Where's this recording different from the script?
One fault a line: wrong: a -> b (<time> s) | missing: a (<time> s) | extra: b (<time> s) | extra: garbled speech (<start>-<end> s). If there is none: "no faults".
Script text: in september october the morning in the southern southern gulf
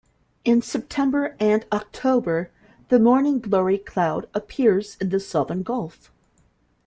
extra: and (1.4 s)
extra: glory cloud appears (3.4 s)
missing: southern (5.6 s)